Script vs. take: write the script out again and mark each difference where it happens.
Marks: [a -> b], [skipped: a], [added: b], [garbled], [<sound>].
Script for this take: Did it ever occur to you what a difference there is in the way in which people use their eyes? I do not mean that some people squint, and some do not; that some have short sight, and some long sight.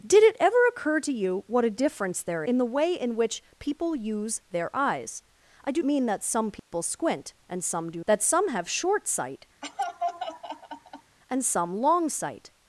Did it ever occur to you what a difference there [skipped: is] in the way in which people use their eyes? I do [skipped: not] mean that some people [dropout] squint, and some do [skipped: not;] that some have short sight, [laugh] and some long sight.